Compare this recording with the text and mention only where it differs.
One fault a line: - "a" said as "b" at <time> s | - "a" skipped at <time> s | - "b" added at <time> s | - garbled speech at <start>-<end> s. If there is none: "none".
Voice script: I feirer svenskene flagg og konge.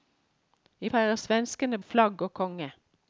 none